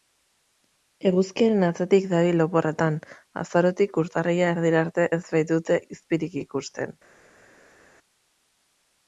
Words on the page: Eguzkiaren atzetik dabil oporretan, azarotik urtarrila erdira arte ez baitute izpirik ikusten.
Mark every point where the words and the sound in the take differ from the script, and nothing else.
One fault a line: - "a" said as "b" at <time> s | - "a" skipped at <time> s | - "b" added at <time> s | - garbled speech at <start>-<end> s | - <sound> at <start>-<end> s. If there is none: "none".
none